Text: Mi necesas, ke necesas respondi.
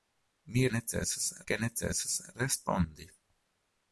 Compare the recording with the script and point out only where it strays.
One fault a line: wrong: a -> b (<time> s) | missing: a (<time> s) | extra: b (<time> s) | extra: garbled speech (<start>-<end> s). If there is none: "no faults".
no faults